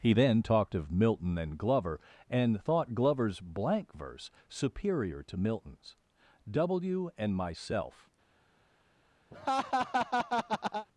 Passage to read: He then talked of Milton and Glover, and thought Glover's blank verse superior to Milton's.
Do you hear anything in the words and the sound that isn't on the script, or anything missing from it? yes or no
yes